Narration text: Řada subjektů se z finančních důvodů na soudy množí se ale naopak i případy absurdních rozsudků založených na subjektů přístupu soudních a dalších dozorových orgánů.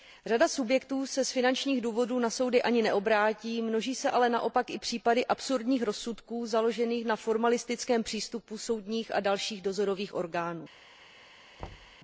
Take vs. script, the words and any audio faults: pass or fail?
fail